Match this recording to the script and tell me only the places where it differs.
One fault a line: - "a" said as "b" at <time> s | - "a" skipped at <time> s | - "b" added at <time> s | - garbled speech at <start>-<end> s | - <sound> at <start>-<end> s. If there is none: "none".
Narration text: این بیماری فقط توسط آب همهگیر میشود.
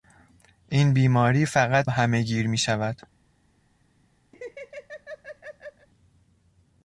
- "توسط آب" skipped at 1.9 s
- laugh at 4.3-5.9 s